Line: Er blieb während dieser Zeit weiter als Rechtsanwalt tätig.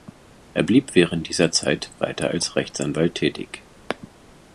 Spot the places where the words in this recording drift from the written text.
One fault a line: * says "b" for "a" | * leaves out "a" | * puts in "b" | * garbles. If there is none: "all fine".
all fine